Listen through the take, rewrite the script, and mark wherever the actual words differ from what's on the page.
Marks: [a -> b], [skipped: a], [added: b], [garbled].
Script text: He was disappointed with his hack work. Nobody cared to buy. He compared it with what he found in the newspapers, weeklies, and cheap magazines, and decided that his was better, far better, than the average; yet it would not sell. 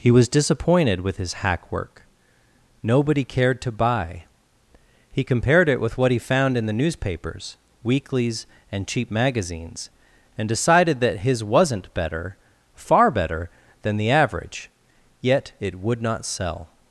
He was disappointed with his hack work. Nobody cared to buy. He compared it with what he found in the newspapers, weeklies, and cheap magazines, and decided that his [was -> wasn't] better, far better, than the average; yet it would not sell.